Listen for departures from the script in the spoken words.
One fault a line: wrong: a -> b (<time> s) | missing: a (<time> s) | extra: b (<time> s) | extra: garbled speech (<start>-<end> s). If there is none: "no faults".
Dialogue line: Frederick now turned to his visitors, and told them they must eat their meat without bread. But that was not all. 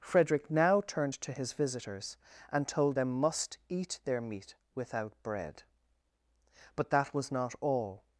missing: they (3.1 s)